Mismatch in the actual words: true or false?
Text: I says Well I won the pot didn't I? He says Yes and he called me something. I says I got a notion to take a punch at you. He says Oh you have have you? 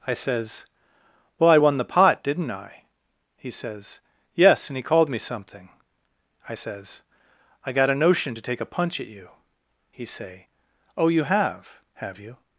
true